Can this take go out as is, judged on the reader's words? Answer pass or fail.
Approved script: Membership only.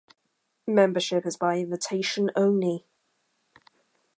fail